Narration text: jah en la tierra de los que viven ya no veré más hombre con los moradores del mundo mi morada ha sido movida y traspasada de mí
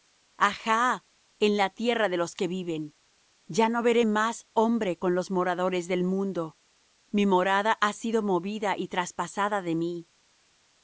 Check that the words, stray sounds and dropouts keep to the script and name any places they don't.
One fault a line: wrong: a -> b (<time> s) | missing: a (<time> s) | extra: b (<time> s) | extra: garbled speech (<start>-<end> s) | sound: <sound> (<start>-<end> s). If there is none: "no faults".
no faults